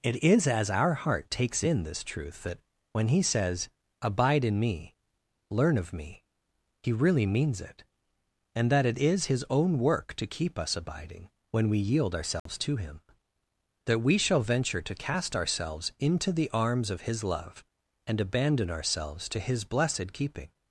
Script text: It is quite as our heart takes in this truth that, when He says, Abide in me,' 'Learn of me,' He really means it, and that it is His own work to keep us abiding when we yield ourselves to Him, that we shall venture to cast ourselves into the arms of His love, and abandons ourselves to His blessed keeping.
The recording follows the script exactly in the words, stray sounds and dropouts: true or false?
false